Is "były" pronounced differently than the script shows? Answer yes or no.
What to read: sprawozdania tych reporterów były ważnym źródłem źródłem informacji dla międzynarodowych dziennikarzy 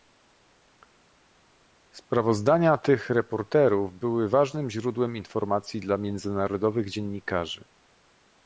no